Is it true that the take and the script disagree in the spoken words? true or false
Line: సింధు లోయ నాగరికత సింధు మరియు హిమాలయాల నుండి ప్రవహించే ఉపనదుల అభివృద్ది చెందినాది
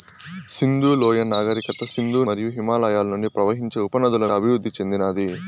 false